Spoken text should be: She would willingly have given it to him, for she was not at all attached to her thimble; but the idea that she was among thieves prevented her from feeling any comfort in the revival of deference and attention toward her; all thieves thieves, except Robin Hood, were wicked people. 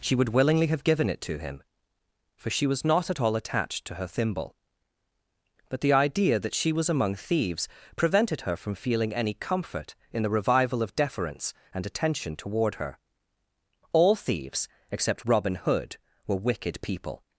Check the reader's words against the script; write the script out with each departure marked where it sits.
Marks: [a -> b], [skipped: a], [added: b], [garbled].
She would willingly have given it to him, for she was not at all attached to her thimble; but the idea that she was among thieves prevented her from feeling any comfort in the revival of deference and attention toward her; all thieves [skipped: thieves,] except Robin Hood, were wicked people.